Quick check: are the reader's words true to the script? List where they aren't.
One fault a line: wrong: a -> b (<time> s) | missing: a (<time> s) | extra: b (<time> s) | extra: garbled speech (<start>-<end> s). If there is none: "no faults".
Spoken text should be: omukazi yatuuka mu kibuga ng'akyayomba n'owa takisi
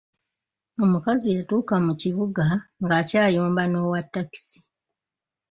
no faults